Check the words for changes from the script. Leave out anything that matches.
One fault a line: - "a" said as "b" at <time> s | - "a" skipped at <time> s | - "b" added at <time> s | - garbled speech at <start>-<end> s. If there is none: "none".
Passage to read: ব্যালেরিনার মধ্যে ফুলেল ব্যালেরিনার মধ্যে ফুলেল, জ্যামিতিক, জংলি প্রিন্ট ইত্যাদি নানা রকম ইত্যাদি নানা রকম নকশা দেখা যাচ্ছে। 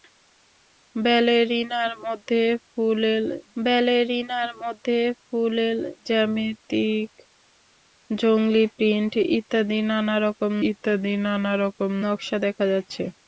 none